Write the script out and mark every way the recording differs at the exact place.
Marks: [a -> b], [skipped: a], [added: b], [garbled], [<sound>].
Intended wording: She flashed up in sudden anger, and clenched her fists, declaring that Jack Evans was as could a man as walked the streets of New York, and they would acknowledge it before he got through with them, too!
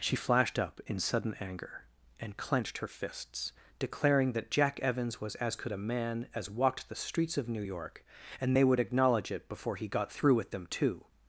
She flashed up in sudden anger, and clenched her fists, declaring that Jack Evans was as could a man as walked the streets of New York, and they would acknowledge it before he got through with them, too!